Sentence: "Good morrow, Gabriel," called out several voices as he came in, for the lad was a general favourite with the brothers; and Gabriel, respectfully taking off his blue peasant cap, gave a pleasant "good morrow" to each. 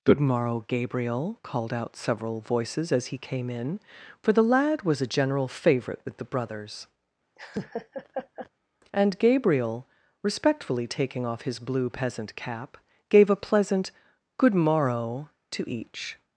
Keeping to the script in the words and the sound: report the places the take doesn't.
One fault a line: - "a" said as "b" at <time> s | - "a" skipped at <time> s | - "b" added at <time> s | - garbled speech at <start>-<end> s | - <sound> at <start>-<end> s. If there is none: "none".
- laugh at 7.4-8.5 s